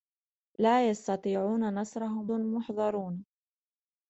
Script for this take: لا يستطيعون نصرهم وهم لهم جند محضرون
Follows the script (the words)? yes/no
no